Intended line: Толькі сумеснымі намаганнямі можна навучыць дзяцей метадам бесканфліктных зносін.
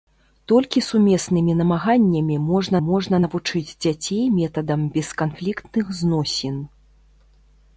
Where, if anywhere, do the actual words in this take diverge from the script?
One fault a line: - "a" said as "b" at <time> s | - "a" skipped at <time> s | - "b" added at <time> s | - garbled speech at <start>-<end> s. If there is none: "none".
- "можна" added at 2.9 s